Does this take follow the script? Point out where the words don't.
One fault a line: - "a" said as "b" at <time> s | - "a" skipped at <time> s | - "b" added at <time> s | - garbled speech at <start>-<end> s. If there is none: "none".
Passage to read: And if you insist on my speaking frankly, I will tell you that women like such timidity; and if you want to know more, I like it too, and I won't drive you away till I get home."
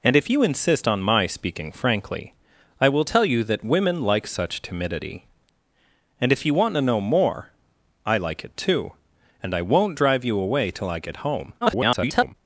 - garbled speech at 11.6-12.3 s